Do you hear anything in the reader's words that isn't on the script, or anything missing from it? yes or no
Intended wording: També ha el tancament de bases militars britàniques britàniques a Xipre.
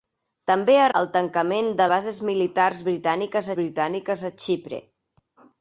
no